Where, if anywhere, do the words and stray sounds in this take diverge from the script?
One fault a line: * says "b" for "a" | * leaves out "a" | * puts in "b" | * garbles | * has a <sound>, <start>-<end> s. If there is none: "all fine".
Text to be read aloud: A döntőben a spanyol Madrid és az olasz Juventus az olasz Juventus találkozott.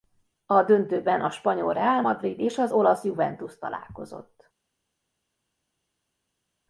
* puts in "Real"
* leaves out "az olasz Juventus"